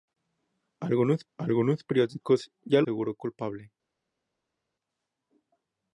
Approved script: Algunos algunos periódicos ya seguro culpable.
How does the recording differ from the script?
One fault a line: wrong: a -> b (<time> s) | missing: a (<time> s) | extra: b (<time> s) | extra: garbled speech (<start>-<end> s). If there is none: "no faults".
no faults